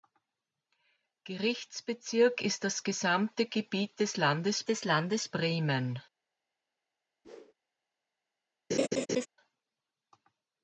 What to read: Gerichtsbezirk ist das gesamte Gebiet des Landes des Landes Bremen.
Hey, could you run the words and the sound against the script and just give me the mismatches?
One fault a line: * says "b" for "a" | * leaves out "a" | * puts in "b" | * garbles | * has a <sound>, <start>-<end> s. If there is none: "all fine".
* has a whoosh, 7.2-7.5 s
* has a laugh, 8.7-9.3 s